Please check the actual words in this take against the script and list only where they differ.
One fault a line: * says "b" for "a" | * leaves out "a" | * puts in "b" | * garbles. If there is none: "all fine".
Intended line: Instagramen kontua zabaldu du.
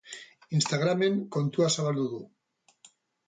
all fine